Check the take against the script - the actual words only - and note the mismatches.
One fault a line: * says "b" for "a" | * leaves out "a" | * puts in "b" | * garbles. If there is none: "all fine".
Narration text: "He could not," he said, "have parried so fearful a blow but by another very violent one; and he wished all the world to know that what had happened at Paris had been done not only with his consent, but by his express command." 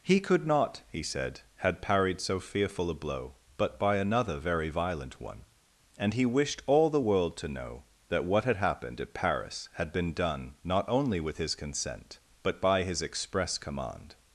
* says "had" for "have"